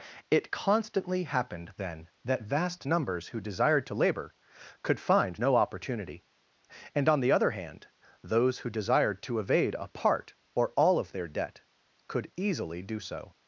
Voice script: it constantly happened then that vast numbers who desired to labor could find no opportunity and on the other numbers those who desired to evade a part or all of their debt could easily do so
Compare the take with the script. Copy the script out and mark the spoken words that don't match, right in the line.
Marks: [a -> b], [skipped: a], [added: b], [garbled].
it constantly happened then that vast numbers who desired to labor could find no opportunity and on the other [numbers -> hand] those who desired to evade a part or all of their debt could easily do so